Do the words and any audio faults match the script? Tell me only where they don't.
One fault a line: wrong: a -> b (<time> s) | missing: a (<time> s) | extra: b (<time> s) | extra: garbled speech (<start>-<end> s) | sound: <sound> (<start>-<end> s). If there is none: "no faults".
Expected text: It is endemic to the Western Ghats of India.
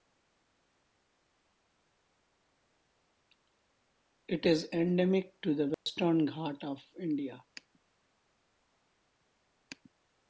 sound: dropout (5.7-5.9 s)